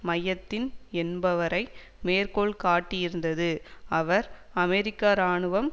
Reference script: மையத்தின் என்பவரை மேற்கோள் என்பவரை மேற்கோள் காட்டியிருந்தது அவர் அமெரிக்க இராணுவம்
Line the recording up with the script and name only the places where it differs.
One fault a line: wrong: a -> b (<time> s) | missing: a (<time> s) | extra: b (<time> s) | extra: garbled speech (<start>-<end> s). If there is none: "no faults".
missing: என்பவரை மேற்கோள் (2.5 s)